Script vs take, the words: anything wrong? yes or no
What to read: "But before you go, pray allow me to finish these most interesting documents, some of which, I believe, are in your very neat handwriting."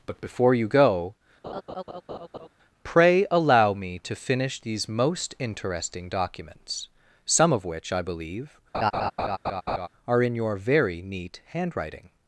no